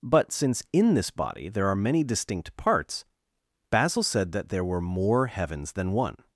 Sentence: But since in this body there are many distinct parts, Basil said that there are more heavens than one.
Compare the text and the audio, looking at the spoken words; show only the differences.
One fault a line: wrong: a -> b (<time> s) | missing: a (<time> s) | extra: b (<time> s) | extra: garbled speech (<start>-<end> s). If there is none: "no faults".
wrong: are -> were (4.7 s)